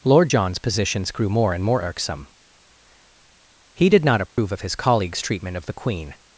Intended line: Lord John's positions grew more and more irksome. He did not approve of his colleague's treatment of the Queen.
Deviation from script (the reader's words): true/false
false